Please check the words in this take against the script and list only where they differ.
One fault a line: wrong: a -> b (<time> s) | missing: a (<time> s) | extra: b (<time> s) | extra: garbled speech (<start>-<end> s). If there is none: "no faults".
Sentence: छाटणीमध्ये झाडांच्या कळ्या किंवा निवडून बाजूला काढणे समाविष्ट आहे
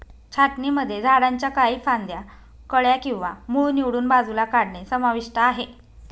extra: काही फांद्या (1.5 s)
extra: मूळ (3.5 s)